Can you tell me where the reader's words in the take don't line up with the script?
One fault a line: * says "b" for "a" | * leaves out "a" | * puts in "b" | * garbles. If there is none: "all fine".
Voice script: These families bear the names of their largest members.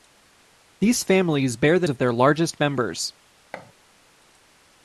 * leaves out "names"